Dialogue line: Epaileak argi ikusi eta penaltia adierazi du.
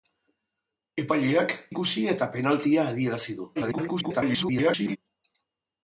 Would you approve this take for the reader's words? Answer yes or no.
no